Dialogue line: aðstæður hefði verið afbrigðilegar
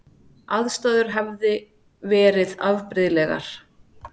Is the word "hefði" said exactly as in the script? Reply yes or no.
yes